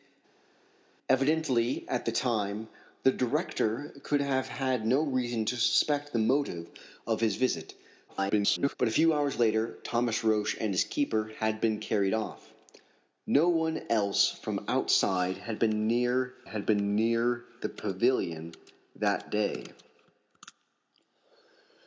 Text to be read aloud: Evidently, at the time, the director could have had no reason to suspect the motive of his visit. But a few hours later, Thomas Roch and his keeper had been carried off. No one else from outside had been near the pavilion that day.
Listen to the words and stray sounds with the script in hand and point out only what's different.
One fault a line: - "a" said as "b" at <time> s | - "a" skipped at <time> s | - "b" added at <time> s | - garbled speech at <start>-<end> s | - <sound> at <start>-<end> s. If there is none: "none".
- garbled speech at 8.1-8.7 s
- "had been near" added at 16.4 s